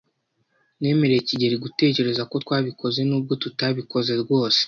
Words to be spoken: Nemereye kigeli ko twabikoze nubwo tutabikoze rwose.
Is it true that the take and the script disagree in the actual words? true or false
true